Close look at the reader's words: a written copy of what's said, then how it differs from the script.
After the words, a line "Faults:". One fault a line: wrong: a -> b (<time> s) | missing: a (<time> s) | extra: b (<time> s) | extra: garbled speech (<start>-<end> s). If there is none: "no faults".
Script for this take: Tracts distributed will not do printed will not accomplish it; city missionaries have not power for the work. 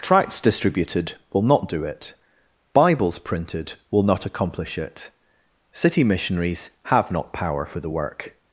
Tracts distributed will not do it; Bibles printed will not accomplish it; city missionaries have not power for the work.
Faults:
extra: it Bibles (1.9 s)